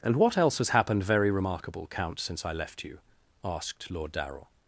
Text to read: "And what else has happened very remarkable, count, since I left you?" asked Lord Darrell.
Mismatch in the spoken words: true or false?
false